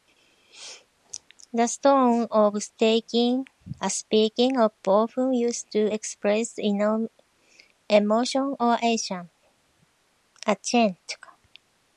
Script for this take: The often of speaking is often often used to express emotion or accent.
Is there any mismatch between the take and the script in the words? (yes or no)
yes